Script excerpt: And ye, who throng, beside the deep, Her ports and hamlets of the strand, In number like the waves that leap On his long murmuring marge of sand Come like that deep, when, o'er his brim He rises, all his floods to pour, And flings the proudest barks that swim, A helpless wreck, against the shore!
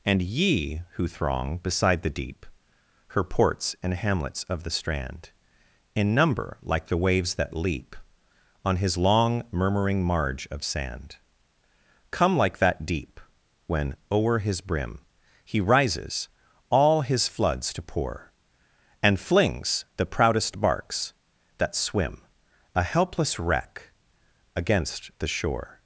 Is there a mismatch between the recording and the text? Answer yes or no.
no